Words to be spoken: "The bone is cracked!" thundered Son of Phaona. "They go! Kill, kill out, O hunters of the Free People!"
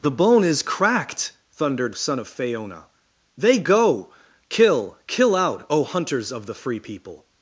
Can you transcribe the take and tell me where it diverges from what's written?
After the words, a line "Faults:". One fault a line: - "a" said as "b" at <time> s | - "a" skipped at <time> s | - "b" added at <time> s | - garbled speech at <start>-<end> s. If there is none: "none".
"The bone is cracked!" thundered Son of Phaona. "They go! Kill, kill out, O hunters of the Free People!"
Faults:
none